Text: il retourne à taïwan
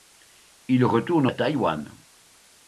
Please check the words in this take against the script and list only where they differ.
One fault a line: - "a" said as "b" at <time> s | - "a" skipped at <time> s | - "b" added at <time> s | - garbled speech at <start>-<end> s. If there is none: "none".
none